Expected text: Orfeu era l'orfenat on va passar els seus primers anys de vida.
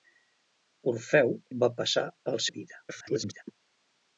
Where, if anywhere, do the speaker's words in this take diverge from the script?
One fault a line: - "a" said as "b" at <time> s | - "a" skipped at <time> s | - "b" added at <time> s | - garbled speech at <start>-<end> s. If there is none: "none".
- "era l'orfenat" skipped at 1.3 s
- "seus primers anys" skipped at 2.5 s
- garbled speech at 2.9-3.4 s